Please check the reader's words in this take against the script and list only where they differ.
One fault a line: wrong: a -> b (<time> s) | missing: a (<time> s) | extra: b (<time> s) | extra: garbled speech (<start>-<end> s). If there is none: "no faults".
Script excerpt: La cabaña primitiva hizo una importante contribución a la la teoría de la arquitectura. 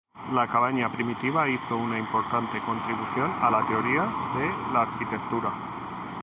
missing: la (3.7 s)